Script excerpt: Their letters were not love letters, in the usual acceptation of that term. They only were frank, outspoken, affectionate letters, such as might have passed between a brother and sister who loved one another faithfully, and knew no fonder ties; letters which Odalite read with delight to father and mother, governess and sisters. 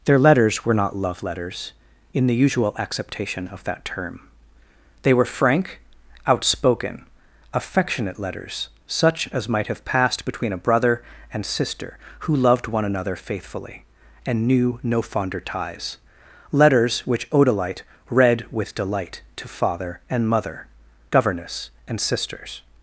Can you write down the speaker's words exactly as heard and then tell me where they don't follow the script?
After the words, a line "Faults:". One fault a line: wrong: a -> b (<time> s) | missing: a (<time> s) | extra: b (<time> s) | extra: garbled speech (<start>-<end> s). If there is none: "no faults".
Their letters were not love letters, in the usual acceptation of that term. They were frank, outspoken, affectionate letters, such as might have passed between a brother and sister who loved one another faithfully, and knew no fonder ties; letters which Odalite read with delight to father and mother, governess and sisters.
Faults:
missing: only (5.1 s)